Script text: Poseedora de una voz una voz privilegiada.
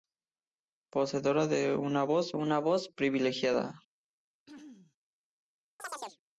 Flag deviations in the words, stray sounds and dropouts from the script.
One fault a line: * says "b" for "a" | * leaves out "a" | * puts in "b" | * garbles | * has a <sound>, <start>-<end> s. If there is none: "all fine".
* has a throat clearing, 4.5-5.0 s
* has a chirp, 5.8-6.2 s